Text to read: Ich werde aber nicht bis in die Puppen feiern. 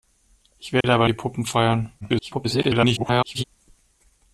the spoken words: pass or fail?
fail